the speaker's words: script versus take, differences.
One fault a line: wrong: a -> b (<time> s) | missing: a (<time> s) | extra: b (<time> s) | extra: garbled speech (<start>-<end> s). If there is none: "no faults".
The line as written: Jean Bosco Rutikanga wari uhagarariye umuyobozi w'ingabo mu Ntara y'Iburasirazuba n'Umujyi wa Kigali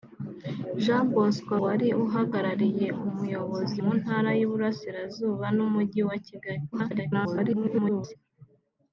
missing: Rutikanga (1.5 s)
missing: w'ingabo (3.8 s)
extra: garbled speech (6.7-8.2 s)